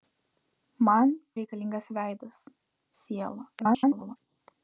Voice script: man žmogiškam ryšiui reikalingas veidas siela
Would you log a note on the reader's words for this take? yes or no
yes